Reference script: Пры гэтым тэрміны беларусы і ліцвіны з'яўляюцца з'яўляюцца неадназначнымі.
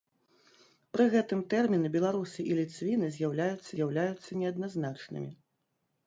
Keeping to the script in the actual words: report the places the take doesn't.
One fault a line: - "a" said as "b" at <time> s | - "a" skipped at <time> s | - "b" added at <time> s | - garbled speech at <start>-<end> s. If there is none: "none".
none